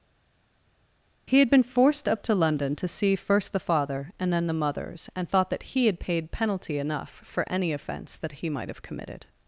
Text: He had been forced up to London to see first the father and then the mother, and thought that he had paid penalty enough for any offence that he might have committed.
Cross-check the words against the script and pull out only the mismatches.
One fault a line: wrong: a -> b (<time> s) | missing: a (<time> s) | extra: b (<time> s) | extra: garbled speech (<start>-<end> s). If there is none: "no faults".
wrong: mother -> mothers (4.5 s)